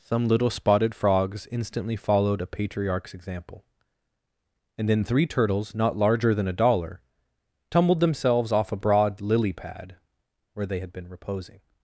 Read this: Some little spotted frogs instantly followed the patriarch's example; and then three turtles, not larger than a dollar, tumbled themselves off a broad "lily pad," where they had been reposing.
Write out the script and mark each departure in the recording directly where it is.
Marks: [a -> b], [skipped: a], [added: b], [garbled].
Some little spotted frogs instantly followed [the -> a] patriarch's example; and then three turtles, not larger than a dollar, tumbled themselves off a broad "lily pad," where they had been reposing.